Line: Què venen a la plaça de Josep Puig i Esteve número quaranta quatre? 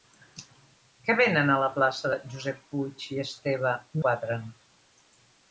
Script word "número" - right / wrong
wrong